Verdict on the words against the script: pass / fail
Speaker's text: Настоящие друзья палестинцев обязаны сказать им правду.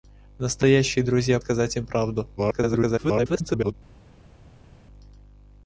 fail